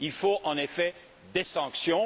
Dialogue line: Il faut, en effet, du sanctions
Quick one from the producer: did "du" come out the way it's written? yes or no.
no